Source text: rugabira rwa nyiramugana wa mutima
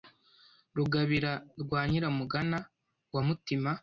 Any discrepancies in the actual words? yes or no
no